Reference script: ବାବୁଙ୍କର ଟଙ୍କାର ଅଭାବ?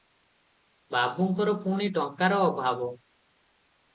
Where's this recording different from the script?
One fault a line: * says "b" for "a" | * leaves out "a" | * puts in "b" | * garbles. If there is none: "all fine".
* puts in "ପୁଣି"